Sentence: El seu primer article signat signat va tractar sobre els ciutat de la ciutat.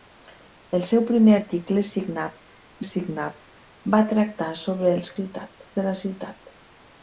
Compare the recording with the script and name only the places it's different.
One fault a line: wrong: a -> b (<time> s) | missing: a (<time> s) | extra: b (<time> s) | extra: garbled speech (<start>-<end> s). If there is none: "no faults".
no faults